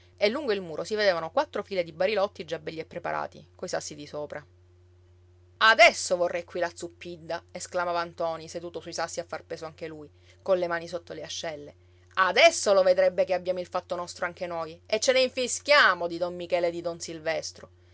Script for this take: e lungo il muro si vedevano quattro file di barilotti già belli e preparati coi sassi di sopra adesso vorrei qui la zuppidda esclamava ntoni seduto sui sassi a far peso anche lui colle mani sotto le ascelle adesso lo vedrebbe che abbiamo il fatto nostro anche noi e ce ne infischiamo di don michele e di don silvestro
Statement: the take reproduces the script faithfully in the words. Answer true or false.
true